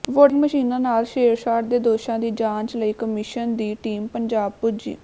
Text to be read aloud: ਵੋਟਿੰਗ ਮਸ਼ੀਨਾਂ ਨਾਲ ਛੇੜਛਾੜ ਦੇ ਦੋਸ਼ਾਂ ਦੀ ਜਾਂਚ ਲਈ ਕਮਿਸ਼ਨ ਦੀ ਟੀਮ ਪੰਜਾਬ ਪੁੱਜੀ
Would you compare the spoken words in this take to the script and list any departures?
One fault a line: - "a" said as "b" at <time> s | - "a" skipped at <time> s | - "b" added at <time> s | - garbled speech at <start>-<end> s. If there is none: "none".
none